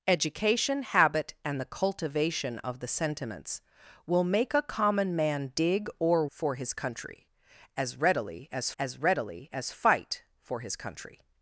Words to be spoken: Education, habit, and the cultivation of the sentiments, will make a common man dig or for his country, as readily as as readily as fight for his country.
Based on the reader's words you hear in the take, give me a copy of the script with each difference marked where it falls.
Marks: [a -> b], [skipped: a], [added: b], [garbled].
Education, habit, and the cultivation of the sentiments, will make a common man dig or for his country, as readily as as readily as fight for his country.